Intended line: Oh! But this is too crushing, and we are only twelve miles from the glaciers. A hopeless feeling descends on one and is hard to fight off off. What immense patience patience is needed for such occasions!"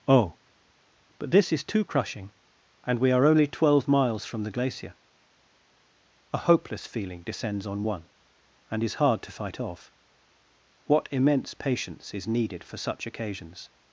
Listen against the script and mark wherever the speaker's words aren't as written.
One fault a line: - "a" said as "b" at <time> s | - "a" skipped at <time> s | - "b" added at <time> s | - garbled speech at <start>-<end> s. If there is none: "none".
- "glaciers" said as "glacier" at 4.5 s
- "off" skipped at 9.9 s
- "patience" skipped at 12.1 s